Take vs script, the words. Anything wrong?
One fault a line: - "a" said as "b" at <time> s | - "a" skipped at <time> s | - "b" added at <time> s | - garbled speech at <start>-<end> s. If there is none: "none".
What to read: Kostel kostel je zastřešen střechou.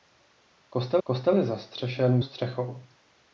none